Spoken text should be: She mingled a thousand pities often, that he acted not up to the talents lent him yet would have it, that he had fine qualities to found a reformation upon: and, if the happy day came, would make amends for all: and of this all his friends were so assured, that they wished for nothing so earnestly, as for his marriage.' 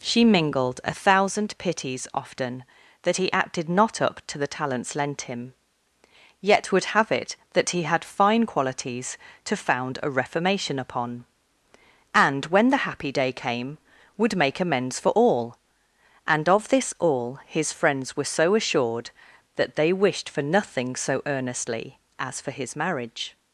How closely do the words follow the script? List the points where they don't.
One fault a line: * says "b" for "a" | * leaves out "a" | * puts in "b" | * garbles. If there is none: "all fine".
* says "when" for "if"